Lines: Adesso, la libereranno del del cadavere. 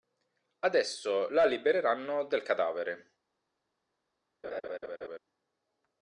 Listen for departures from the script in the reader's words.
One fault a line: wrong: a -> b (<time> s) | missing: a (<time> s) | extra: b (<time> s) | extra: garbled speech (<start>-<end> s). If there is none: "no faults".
missing: del (2.5 s)